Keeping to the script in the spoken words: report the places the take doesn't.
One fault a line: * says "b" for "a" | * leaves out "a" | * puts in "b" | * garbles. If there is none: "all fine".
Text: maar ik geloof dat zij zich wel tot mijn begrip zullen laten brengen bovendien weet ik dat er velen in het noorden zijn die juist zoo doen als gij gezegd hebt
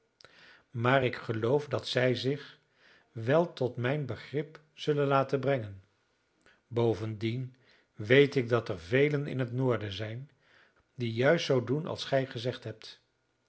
all fine